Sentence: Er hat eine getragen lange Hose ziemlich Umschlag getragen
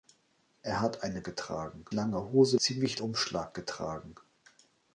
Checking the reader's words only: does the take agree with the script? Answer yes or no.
yes